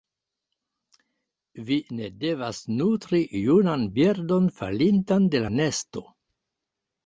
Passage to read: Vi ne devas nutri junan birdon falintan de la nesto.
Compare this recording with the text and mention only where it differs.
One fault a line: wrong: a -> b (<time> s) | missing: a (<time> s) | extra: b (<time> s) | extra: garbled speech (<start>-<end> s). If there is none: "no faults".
no faults